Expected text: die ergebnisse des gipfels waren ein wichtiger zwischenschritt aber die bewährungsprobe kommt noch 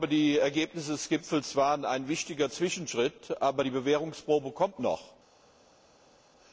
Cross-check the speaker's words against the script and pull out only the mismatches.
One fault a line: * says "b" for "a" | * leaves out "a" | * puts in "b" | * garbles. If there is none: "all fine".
all fine